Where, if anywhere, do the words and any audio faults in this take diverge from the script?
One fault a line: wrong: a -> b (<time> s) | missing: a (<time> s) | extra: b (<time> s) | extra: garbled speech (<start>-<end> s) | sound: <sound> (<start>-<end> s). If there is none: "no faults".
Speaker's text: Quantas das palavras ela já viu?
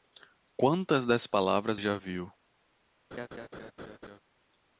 missing: ela (1.8 s)
sound: laugh (3.1-4.2 s)